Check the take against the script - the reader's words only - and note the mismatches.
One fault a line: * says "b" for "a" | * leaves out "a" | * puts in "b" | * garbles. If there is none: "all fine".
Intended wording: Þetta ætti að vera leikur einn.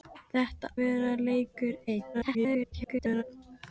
* leaves out "ætti að"
* garbles